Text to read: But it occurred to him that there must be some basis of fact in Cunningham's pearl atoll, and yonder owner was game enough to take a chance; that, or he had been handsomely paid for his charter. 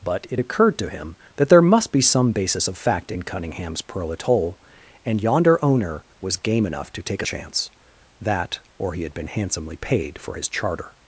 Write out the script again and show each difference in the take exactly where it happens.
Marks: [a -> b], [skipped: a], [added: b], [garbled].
But it occurred to him that there must be some basis of fact in Cunningham's pearl atoll, and yonder owner was game enough to take a chance; that, or he had been handsomely paid for his charter.